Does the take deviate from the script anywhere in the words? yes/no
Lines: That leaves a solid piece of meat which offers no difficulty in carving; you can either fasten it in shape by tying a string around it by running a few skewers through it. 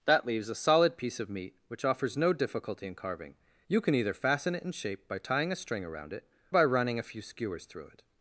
no